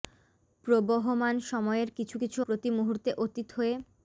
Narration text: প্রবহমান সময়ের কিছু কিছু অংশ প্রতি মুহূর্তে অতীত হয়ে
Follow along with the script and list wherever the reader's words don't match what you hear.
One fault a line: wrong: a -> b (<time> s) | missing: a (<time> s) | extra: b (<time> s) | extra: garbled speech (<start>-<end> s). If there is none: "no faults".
missing: অংশ (2.4 s)